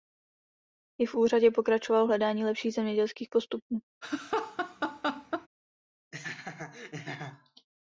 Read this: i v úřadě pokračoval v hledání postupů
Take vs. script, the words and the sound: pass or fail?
fail